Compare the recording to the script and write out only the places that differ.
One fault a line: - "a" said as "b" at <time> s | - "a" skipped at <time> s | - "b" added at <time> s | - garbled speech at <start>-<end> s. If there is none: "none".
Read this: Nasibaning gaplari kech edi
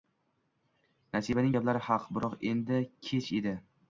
- "haq biroq endi" added at 1.9 s